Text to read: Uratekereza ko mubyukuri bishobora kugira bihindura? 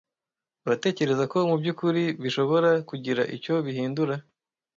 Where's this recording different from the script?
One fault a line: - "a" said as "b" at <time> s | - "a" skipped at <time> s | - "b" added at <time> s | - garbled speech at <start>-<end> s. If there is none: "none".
- "icyo" added at 3.3 s